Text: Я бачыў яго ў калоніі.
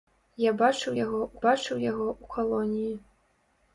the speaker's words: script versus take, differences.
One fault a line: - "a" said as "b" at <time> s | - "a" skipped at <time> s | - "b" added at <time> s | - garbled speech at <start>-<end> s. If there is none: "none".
- "бачыў яго ў" added at 1.4 s